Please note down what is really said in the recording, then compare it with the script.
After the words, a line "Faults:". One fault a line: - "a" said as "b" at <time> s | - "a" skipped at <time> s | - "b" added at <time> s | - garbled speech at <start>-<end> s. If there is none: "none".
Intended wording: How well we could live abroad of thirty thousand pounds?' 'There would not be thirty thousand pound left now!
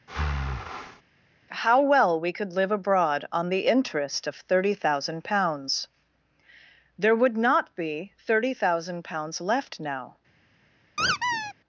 How well we could live abroad on the interest of thirty thousand pounds?' 'There would not be thirty thousand pounds left now!
Faults:
- "on the interest" added at 3.3 s
- "pound" said as "pounds" at 9.1 s